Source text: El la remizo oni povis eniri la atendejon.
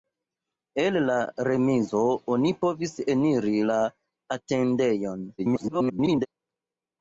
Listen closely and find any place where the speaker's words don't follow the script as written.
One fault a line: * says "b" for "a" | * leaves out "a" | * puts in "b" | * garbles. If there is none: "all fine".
* garbles